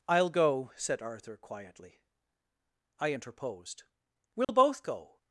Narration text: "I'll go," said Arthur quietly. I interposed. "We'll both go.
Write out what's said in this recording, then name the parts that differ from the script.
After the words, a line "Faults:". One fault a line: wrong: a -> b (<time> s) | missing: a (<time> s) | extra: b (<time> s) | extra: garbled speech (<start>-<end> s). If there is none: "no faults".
"I'll go," said Arthur quietly. I interposed. "We'll both go.
Faults:
no faults